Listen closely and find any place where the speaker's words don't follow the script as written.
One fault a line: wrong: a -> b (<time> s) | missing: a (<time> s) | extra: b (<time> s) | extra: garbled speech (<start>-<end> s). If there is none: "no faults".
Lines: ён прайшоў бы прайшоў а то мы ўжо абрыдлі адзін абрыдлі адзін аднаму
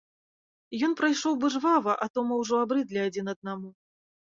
wrong: прайшоў -> жвава (1.6 s)
missing: абрыдлі адзін (3.2 s)